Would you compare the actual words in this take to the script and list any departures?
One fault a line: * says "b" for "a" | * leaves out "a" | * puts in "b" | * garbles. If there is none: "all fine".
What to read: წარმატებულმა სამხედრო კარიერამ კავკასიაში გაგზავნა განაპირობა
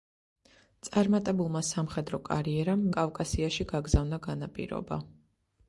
all fine